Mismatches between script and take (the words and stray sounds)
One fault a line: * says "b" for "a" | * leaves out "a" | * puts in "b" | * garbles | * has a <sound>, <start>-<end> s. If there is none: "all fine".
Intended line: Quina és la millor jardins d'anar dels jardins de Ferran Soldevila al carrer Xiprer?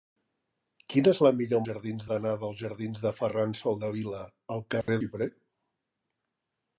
* has a dropout, 4.8-4.9 s